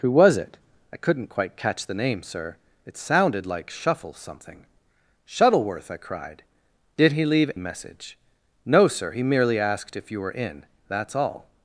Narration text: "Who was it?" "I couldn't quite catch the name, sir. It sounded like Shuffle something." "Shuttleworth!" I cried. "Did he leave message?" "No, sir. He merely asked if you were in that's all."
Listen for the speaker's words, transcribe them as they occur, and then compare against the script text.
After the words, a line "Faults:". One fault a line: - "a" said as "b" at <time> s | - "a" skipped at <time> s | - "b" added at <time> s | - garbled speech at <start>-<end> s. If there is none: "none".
"Who was it?" "I couldn't quite catch the name, sir. It sounded like Shuffle something." "Shuttleworth!" I cried. "Did he leave message?" "No, sir. He merely asked if you were in that's all."
Faults:
none